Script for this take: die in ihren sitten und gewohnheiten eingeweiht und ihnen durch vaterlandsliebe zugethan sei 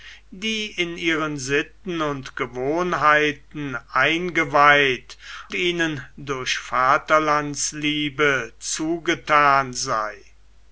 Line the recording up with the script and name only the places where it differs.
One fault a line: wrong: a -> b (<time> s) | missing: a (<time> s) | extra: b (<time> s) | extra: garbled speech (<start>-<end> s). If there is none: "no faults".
missing: und (5.2 s)